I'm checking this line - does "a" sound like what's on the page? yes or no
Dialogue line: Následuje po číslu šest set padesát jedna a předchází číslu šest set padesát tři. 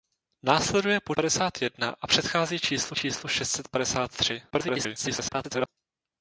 yes